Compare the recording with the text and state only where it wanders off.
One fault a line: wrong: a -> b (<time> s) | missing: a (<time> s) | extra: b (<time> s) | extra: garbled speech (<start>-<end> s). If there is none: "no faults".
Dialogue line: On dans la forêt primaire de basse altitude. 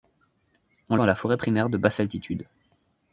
no faults